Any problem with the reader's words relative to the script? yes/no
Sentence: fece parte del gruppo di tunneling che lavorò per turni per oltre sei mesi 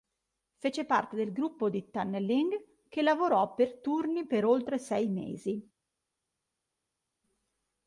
no